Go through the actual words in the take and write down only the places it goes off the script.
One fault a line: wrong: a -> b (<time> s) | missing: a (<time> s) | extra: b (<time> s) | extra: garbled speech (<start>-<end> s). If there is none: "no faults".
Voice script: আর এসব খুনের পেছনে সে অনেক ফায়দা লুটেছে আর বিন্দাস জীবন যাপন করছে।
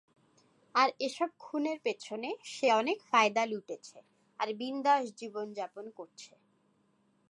no faults